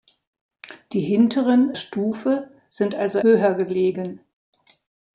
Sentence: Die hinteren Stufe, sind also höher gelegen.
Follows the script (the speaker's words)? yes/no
yes